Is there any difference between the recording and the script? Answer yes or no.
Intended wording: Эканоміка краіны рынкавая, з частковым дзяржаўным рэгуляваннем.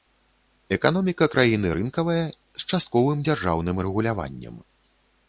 no